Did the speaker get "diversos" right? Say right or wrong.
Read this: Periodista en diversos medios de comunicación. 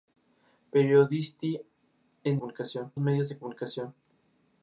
wrong